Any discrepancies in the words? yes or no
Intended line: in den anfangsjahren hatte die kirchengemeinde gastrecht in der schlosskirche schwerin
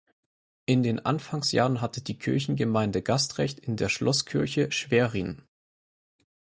no